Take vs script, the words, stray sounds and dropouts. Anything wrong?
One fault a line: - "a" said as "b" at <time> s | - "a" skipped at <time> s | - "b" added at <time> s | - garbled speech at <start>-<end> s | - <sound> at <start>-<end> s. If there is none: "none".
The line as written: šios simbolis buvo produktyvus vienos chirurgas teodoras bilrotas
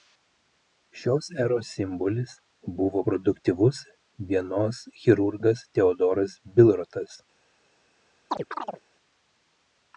- "eros" added at 1.4 s
- chirp at 8.3-8.8 s